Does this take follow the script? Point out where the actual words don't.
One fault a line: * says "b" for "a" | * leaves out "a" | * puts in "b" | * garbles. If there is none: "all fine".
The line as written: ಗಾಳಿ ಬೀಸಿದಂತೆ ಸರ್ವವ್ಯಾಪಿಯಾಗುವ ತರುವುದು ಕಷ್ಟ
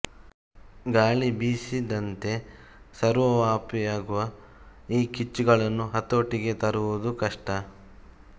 * puts in "ಈ ಕಿಚ್ಚುಗಳನ್ನು ಹತೋಟಿಗೆ"